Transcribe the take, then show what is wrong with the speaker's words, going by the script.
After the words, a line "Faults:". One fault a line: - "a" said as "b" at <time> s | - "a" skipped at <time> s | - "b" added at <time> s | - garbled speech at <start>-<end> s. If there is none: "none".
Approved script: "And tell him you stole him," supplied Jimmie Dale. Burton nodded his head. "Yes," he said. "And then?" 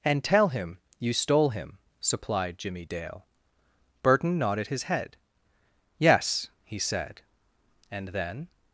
"And tell him you stole him," supplied Jimmie Dale. Burton nodded his head. "Yes," he said. "And then?"
Faults:
none